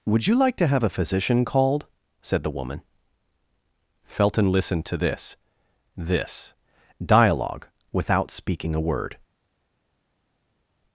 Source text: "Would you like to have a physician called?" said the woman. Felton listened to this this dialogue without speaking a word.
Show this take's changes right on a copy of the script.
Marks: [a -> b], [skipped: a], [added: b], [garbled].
"Would you like to have a physician called?" said the woman. Felton listened to this this dialogue without speaking a word.